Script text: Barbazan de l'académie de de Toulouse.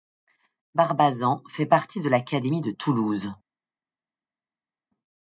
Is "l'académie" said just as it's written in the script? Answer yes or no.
yes